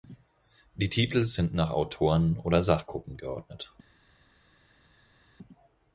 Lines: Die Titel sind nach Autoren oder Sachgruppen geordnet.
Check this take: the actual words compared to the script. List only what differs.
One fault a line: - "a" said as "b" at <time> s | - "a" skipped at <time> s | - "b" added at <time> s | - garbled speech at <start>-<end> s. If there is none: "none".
none